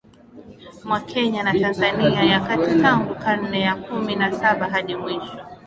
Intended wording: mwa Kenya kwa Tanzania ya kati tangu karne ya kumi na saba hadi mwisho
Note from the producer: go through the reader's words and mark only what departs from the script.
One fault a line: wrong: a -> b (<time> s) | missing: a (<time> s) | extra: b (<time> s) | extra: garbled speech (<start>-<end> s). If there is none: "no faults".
wrong: kwa -> na (1.4 s)